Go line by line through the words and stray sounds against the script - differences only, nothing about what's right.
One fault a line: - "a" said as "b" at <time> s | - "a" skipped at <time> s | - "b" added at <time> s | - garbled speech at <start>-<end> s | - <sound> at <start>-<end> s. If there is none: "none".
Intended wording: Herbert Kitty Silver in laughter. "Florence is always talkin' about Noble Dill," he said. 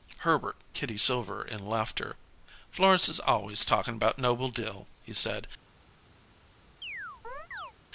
- chirp at 6.8-7.7 s